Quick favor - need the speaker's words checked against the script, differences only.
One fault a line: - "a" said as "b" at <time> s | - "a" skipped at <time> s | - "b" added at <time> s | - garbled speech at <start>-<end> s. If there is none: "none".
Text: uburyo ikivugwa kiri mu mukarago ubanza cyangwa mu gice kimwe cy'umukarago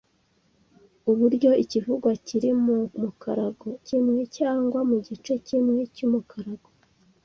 - "ubanza" said as "kimwe" at 3.9 s